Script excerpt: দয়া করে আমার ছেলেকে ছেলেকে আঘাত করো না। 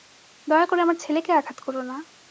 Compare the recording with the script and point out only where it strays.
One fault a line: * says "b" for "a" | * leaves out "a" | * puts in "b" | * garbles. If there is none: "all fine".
* leaves out "ছেলেকে"